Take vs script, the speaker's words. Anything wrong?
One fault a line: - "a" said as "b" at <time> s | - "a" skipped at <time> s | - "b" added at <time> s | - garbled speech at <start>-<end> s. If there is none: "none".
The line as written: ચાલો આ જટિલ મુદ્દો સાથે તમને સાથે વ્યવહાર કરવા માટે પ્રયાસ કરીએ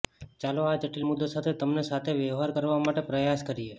none